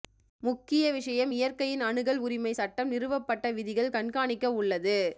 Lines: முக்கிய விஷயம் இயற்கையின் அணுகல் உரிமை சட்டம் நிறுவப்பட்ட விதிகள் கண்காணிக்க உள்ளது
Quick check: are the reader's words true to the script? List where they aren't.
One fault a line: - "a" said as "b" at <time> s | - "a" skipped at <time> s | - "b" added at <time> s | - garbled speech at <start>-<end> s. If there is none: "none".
none